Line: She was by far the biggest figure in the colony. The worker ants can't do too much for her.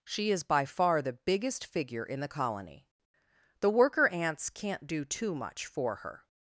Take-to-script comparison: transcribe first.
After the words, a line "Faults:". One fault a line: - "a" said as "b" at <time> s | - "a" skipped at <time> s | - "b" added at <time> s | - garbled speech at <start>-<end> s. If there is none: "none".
She is by far the biggest figure in the colony. The worker ants can't do too much for her.
Faults:
- "was" said as "is" at 0.3 s